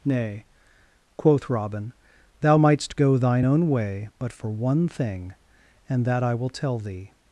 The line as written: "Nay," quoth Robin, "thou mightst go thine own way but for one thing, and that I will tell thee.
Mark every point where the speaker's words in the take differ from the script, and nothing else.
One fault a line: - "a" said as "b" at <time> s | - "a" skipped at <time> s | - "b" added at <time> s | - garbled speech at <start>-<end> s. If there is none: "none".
none